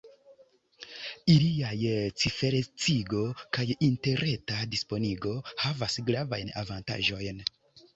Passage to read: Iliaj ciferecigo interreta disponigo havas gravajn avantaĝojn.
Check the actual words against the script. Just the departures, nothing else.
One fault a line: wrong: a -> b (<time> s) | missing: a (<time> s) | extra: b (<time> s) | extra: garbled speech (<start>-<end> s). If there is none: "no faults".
extra: kaj (3.6 s)